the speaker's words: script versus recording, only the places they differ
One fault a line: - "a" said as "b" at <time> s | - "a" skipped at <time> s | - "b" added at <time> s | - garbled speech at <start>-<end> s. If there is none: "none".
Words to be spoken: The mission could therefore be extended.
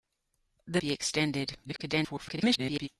- "mission could therefore" skipped at 0.8 s
- garbled speech at 1.6-2.9 s